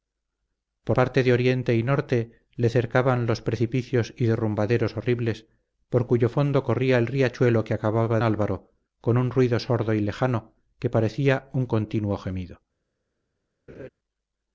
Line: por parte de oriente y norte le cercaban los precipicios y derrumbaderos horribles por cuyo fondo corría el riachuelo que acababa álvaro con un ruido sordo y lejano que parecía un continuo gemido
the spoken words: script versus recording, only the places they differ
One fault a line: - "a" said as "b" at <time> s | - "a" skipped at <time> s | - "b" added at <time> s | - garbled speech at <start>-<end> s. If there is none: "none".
none